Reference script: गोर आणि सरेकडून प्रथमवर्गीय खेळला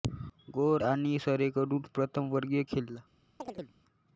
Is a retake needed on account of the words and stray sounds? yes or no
yes